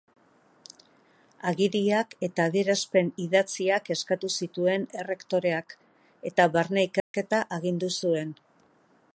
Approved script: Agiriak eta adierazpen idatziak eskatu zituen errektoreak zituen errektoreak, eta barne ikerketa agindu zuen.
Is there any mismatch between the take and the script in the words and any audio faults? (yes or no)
yes